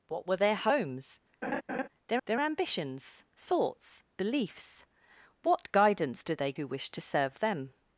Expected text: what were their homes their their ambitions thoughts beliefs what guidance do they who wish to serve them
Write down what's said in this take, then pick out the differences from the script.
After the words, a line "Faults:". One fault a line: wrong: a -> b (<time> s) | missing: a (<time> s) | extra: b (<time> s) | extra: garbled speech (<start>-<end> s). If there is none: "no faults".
what were their homes their their ambitions thoughts beliefs what guidance do they who wish to serve them
Faults:
no faults